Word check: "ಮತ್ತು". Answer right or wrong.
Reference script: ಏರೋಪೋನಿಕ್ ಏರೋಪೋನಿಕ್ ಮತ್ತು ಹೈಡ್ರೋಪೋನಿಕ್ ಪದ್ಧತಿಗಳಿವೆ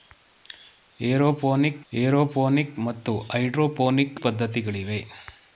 right